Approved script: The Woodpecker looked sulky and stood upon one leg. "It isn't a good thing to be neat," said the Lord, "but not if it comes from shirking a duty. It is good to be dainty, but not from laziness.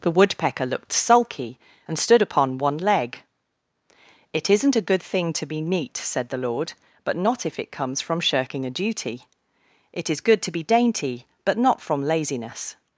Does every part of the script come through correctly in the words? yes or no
yes